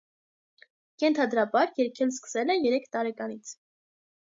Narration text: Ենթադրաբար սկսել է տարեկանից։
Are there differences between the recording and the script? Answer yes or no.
yes